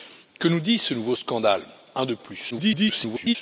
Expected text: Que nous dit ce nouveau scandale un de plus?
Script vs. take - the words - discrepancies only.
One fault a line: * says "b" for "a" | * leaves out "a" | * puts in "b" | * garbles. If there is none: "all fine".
* garbles